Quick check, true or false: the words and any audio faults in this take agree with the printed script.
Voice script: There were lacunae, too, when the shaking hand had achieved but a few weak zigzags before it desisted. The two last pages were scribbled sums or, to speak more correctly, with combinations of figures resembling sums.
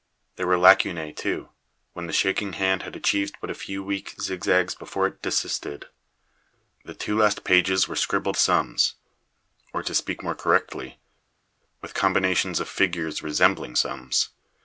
true